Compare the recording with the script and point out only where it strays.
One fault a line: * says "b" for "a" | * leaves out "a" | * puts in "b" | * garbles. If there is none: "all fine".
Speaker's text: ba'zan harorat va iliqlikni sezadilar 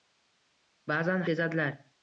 * leaves out "harorat va iliqlikni"